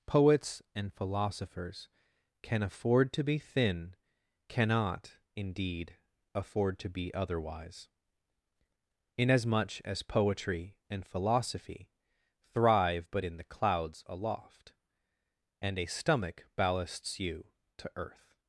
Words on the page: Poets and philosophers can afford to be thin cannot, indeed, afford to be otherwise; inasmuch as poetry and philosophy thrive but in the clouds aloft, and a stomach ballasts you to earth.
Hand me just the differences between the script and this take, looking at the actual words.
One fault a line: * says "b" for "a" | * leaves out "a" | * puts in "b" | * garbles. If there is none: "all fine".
all fine